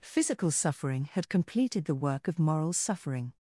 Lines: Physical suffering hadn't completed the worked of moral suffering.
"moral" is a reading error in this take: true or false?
false